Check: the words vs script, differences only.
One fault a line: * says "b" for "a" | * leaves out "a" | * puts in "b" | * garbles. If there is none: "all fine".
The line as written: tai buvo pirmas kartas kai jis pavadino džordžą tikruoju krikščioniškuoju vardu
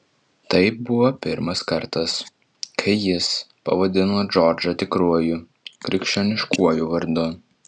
all fine